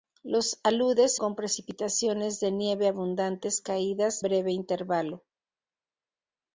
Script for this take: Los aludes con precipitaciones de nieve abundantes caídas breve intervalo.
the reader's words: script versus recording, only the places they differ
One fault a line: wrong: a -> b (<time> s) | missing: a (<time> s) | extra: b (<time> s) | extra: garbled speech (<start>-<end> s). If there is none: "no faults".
no faults